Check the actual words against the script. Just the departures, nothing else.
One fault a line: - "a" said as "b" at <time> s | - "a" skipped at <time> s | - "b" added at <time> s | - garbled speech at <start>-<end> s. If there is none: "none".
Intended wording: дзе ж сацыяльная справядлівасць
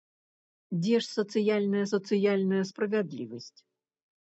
- "сацыяльная" added at 1.9 s